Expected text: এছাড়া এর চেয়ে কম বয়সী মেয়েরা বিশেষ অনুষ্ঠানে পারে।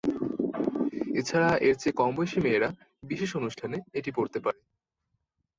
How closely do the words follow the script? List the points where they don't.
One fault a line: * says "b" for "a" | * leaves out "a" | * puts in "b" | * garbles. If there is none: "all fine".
* puts in "এটি পরতে"